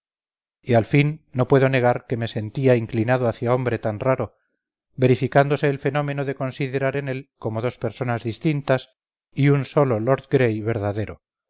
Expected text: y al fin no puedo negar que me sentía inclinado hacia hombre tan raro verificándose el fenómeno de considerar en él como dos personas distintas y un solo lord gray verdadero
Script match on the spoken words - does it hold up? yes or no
yes